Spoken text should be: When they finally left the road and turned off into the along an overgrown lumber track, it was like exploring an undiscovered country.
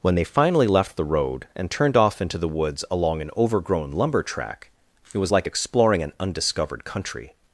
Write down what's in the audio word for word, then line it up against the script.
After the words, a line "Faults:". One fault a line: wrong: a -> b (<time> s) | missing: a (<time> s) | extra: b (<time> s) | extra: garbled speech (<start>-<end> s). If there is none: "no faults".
When they finally left the road and turned off into the woods along an overgrown lumber track, it was like exploring an undiscovered country.
Faults:
extra: woods (2.5 s)